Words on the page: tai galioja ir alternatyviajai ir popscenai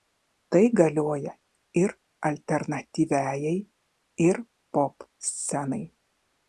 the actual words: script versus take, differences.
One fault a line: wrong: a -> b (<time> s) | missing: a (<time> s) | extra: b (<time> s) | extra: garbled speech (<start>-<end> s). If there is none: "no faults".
no faults